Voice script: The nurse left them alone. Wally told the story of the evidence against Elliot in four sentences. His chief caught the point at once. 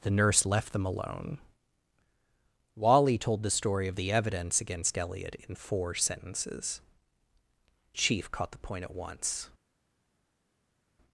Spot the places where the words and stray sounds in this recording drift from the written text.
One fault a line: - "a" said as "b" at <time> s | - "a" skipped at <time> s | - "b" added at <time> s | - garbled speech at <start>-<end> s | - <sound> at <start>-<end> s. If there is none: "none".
- "His" skipped at 6.8 s